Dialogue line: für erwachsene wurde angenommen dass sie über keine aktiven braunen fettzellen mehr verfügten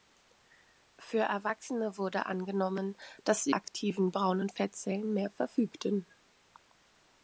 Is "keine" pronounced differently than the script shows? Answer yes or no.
yes